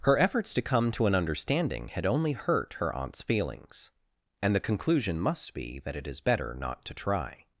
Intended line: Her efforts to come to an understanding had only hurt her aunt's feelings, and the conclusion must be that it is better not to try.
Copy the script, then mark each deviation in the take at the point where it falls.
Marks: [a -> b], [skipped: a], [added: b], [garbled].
Her efforts to come to an understanding had only hurt her aunt's feelings, and the conclusion must be that it is better not to try.